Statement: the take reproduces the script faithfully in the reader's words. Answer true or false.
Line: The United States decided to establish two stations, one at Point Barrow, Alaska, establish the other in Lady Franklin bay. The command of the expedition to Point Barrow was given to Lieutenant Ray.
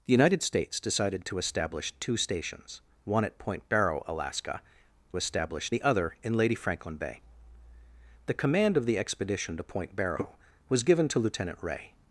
true